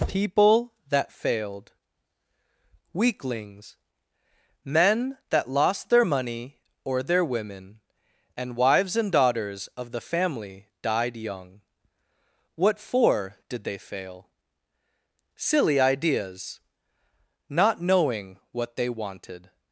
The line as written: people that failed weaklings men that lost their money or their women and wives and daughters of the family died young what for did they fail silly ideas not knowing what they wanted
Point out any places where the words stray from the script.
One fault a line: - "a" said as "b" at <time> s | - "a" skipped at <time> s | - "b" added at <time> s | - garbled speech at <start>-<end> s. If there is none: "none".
none